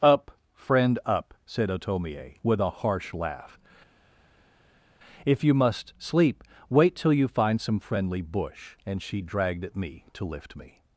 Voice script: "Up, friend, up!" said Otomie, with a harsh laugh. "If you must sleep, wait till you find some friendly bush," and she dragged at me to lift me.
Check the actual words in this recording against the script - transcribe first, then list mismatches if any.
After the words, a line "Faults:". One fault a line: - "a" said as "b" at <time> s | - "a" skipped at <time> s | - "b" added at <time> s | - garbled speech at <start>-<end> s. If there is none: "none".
"Up, friend, up!" said Otomie, with a harsh laugh. "If you must sleep, wait till you find some friendly bush," and she dragged at me to lift me.
Faults:
none